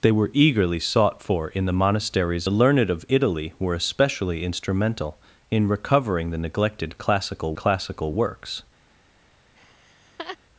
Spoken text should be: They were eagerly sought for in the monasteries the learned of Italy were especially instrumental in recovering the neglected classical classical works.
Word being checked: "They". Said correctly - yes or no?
yes